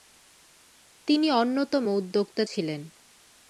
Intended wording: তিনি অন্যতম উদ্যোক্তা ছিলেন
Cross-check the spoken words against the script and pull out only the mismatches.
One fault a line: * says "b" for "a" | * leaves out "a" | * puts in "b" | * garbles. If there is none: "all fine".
all fine